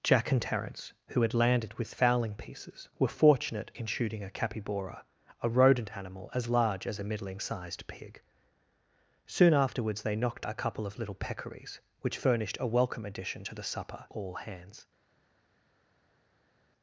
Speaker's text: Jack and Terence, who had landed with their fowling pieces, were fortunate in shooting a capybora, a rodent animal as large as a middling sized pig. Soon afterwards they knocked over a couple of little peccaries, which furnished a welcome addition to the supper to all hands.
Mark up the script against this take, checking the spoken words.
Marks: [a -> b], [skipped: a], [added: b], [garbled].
Jack and Terence, who had landed with [skipped: their] fowling pieces, were fortunate in shooting a capybora, a rodent animal as large as a middling sized pig. Soon afterwards they knocked [skipped: over] a couple of little peccaries, which furnished a welcome addition to the supper [skipped: to] all hands.